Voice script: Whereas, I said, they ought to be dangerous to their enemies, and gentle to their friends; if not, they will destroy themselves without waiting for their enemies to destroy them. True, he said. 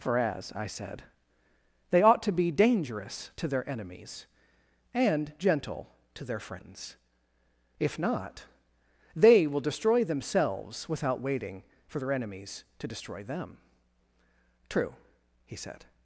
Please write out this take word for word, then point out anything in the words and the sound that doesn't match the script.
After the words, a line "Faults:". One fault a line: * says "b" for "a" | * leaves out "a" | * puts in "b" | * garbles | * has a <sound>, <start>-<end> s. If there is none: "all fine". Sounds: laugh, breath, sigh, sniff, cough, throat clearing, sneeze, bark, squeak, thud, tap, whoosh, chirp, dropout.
For as, I said, they ought to be dangerous to their enemies, and gentle to their friends; if not, they will destroy themselves without waiting for their enemies to destroy them. True, he said.
Faults:
* says "For as" for "Whereas"